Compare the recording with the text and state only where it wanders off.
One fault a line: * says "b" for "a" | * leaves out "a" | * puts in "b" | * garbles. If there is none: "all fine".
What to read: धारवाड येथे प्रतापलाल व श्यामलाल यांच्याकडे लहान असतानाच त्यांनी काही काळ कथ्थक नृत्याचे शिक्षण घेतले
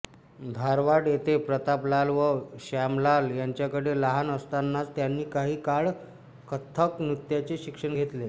all fine